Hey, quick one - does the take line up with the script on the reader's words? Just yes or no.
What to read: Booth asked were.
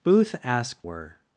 yes